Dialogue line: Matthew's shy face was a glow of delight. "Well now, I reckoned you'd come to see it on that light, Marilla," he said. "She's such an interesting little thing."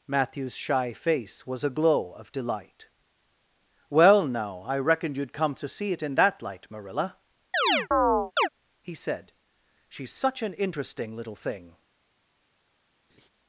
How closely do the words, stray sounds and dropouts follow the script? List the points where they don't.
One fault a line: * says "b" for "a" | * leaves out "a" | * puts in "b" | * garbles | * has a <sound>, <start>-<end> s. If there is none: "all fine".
* says "in" for "on"
* has a chirp, 7.5-8.5 s
* has a laugh, 13.1-13.3 s